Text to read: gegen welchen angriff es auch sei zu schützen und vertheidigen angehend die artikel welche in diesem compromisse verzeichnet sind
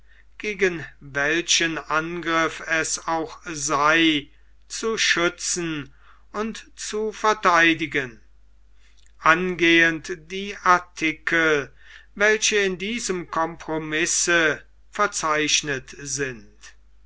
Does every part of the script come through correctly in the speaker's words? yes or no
no